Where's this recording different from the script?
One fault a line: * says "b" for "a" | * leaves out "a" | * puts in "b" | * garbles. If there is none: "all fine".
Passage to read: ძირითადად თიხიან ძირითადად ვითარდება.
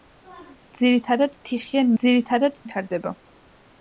all fine